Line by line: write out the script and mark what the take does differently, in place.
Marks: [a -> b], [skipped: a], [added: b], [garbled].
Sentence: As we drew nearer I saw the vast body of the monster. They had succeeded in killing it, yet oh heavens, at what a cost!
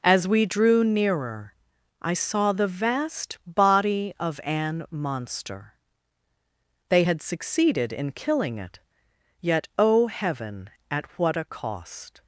As we drew nearer I saw the vast body of [the -> an] monster. They had succeeded in killing it, yet oh [heavens, -> heaven] at what a cost!